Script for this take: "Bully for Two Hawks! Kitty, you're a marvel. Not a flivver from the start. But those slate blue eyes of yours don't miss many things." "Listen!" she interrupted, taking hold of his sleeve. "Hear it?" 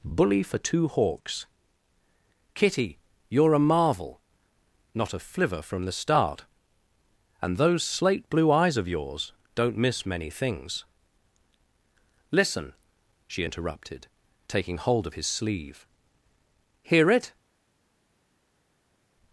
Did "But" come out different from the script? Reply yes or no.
yes